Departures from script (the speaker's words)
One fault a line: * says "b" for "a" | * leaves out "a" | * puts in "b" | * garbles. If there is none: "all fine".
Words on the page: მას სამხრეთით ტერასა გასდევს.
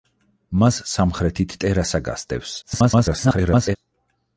* garbles